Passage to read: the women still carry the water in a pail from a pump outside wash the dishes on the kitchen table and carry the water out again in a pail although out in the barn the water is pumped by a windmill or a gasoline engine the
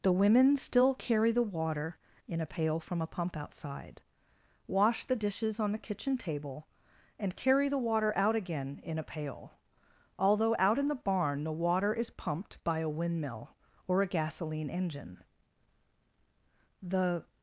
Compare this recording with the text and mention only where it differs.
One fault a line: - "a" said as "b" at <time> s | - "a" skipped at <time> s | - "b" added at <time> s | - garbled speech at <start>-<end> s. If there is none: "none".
none